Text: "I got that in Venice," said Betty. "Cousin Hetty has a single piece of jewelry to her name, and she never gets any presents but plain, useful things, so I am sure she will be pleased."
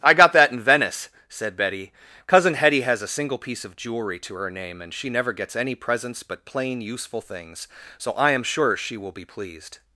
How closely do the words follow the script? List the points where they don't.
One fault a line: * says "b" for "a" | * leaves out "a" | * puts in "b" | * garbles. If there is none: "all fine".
all fine